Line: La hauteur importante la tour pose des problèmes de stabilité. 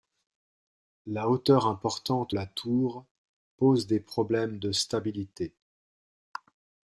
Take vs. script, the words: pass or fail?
pass